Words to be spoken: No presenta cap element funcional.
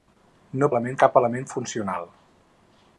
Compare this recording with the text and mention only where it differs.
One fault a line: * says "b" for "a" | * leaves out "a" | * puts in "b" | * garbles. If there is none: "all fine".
* says "element" for "presenta"